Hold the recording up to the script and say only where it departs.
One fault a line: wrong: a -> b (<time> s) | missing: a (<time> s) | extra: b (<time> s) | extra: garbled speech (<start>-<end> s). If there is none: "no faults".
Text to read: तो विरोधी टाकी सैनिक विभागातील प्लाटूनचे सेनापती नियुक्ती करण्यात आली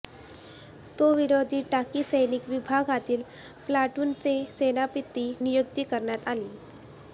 no faults